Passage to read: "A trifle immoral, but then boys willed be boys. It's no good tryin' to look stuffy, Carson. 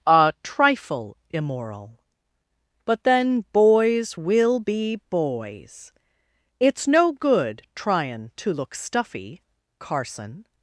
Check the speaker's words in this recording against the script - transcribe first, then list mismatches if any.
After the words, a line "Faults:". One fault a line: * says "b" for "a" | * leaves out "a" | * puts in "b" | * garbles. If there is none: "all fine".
"A trifle immoral, but then boys will be boys. It's no good tryin' to look stuffy, Carson.
Faults:
* says "will" for "willed"